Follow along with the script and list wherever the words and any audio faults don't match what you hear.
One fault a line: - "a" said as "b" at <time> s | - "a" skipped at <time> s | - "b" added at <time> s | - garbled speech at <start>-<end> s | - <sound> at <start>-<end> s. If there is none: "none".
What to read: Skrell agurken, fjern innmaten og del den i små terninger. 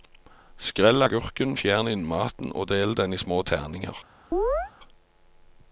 - chirp at 4.3-4.7 s